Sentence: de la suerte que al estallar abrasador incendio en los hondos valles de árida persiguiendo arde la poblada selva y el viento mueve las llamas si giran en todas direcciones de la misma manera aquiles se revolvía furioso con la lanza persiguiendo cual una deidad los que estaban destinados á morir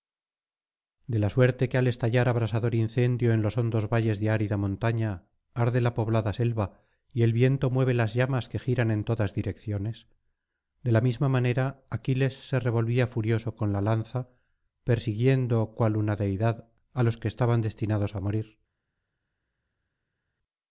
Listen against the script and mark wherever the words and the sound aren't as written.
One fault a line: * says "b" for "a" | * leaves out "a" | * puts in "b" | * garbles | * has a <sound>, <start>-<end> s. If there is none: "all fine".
* says "montaña" for "persiguiendo"
* says "que" for "si"
* puts in "á"